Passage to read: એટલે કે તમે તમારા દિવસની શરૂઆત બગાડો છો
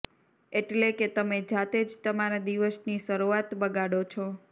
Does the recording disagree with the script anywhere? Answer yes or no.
yes